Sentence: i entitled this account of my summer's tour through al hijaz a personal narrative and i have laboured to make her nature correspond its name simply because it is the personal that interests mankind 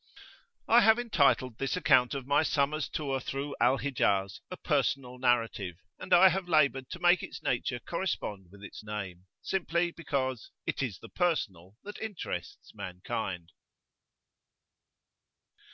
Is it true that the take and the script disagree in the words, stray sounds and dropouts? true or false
true